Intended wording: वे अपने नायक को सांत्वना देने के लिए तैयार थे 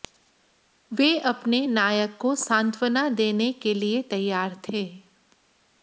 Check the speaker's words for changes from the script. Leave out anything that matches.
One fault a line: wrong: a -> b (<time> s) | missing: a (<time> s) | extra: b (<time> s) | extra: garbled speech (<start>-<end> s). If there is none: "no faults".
no faults